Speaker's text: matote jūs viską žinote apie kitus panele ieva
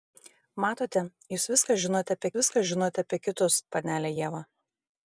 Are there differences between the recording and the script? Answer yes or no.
yes